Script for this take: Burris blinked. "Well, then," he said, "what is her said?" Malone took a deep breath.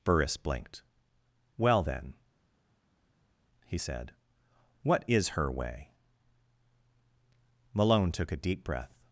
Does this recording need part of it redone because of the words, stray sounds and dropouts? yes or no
yes